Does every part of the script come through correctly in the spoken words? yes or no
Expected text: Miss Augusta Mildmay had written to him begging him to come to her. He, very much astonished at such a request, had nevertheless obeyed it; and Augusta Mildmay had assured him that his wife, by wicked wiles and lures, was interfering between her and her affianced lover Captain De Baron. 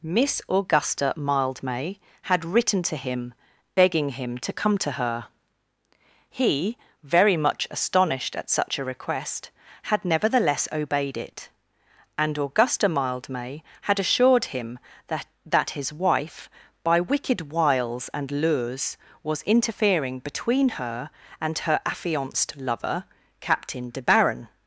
no